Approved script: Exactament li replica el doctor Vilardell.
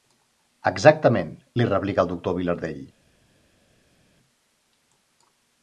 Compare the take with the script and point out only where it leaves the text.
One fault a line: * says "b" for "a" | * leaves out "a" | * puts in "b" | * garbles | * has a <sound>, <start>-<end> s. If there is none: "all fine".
all fine